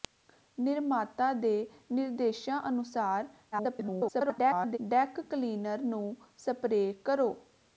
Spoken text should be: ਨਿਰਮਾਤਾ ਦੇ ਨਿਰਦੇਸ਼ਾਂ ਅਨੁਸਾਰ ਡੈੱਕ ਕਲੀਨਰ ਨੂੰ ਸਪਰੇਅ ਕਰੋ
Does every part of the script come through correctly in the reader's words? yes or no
no